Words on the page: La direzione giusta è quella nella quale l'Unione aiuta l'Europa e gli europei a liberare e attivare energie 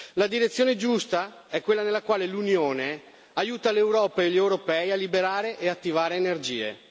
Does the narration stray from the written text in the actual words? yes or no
no